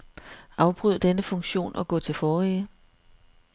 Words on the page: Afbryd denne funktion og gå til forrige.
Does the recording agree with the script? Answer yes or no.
yes